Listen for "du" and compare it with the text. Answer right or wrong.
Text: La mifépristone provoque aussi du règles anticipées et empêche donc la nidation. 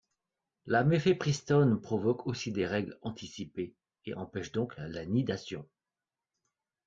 wrong